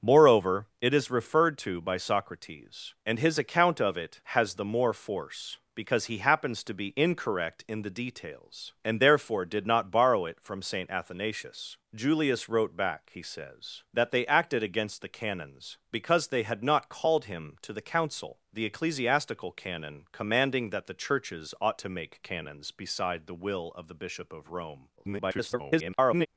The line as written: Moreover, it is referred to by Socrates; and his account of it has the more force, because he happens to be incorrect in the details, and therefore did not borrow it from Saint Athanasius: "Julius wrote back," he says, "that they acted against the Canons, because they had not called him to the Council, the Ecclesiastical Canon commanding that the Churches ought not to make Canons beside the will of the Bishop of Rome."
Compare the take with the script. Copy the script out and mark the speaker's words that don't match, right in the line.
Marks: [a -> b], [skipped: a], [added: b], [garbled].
Moreover, it is referred to by Socrates; and his account of it has the more force, because he happens to be incorrect in the details, and therefore did not borrow it from Saint Athanasius: "Julius wrote back," he says, "that they acted against the Canons, because they had not called him to the Council, the Ecclesiastical Canon commanding that the Churches ought [skipped: not] to make Canons beside the will of the Bishop of Rome." [garbled]